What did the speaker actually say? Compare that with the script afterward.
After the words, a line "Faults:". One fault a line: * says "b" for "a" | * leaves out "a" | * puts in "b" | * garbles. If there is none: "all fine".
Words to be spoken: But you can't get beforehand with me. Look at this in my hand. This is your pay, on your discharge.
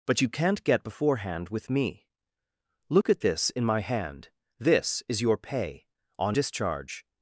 But you can't get beforehand with me. Look at this in my hand. This is your pay, on discharge.
Faults:
* leaves out "your"